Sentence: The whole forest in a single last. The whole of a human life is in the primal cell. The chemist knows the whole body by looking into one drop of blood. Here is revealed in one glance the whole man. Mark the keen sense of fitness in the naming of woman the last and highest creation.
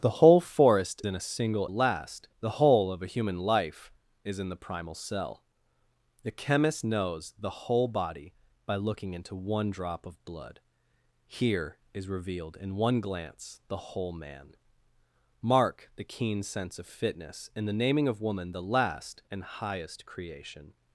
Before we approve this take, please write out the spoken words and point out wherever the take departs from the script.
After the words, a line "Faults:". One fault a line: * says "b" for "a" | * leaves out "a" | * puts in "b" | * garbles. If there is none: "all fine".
The whole forest in a single last. The whole of a human life is in the primal cell. The chemist knows the whole body by looking into one drop of blood. Here is revealed in one glance the whole man. Mark the keen sense of fitness in the naming of woman the last and highest creation.
Faults:
all fine